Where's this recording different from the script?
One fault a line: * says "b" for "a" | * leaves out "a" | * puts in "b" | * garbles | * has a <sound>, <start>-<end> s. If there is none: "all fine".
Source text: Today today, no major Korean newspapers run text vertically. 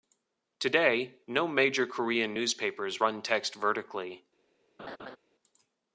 * leaves out "today"
* has a laugh, 4.8-5.2 s